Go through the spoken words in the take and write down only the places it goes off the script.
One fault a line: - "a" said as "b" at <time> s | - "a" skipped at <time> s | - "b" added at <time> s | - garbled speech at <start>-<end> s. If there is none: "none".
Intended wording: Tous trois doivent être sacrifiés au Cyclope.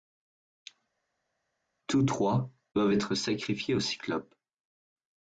none